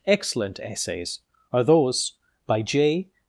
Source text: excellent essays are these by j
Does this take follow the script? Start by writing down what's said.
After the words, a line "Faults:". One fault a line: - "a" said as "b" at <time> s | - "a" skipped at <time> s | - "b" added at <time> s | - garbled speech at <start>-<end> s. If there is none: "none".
excellent essays are those by j
Faults:
- "these" said as "those" at 1.6 s